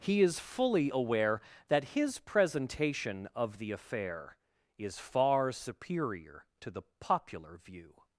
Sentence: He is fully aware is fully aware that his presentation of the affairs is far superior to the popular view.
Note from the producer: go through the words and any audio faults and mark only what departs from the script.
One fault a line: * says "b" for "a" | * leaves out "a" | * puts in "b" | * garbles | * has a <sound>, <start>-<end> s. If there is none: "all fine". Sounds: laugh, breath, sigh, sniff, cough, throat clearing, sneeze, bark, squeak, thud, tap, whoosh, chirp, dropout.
* leaves out "is fully aware"
* says "affair" for "affairs"